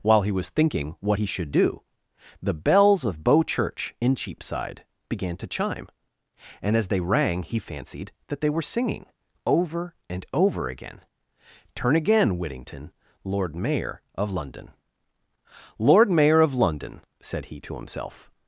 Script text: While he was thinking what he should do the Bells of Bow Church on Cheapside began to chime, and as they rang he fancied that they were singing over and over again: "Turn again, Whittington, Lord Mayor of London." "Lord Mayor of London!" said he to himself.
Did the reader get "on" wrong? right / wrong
wrong